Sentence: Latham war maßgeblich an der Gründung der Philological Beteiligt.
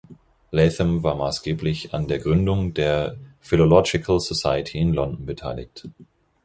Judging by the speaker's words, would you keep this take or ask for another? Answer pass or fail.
fail